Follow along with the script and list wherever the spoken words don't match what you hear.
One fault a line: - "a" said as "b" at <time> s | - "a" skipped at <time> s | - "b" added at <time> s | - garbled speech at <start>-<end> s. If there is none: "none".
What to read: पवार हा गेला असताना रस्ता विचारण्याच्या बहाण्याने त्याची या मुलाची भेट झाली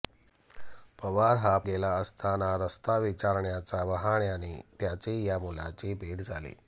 none